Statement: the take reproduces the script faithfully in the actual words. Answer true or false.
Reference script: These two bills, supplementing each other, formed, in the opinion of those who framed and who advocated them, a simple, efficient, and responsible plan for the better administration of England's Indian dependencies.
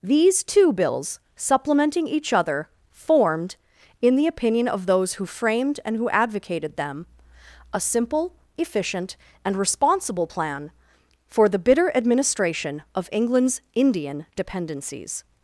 false